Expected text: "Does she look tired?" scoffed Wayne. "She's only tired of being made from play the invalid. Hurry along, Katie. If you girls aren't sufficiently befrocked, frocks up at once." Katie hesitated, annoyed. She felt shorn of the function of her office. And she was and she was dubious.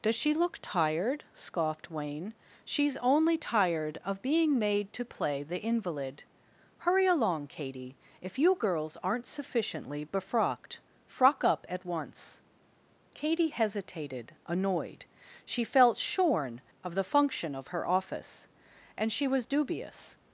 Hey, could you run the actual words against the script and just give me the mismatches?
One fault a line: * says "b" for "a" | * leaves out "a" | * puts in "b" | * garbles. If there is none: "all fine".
* says "to" for "from"
* says "frock" for "frocks"
* leaves out "and she was"